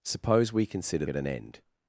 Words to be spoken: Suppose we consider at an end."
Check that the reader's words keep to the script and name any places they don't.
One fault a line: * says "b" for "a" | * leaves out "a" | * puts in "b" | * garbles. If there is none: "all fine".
all fine